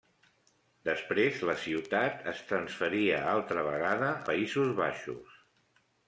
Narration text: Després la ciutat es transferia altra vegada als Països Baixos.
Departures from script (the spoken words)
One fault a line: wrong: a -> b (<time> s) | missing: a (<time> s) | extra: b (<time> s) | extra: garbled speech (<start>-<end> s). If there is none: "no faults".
missing: als (4.1 s)